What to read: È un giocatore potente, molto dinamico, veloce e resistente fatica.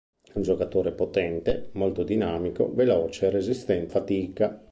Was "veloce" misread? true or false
false